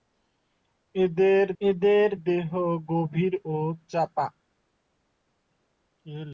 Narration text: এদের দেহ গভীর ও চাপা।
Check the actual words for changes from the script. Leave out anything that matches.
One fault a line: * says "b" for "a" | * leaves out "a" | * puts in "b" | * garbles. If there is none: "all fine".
* puts in "এদের"